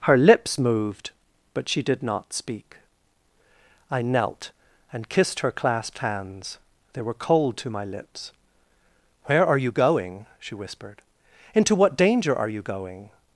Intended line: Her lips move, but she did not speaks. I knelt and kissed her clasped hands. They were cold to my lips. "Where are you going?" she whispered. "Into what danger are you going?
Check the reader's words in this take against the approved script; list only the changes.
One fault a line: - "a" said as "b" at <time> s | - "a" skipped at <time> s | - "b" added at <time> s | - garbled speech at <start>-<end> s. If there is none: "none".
- "move" said as "moved" at 0.6 s
- "speaks" said as "speak" at 2.3 s